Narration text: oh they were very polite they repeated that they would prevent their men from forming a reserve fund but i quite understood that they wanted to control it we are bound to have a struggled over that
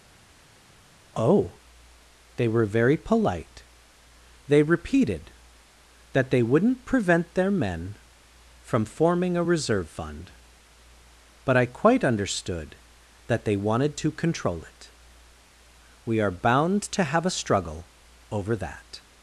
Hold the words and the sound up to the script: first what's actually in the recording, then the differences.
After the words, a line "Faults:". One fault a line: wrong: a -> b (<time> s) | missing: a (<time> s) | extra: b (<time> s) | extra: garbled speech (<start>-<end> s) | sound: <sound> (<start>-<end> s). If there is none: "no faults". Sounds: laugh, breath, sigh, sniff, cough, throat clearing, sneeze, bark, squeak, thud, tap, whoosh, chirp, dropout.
oh they were very polite they repeated that they wouldn't prevent their men from forming a reserve fund but i quite understood that they wanted to control it we are bound to have a struggle over that
Faults:
wrong: would -> wouldn't (6.4 s)
wrong: struggled -> struggle (17.4 s)